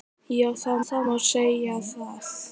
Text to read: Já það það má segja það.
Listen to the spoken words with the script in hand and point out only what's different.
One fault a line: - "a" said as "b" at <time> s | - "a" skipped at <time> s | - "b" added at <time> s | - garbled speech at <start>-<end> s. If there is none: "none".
none